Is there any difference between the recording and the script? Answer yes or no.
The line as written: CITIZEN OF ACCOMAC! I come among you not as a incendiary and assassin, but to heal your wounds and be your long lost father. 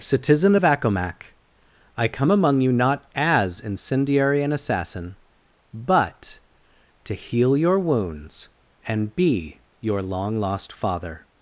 yes